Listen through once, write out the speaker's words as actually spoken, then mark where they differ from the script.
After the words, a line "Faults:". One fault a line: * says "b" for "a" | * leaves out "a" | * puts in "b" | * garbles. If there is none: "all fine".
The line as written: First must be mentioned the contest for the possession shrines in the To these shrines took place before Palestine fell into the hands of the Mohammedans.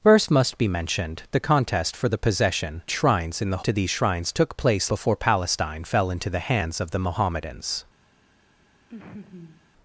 First must be mentioned the contest for the possession shrines in the To these shrines took place before Palestine fell into the hands of the Mohammedans.
Faults:
all fine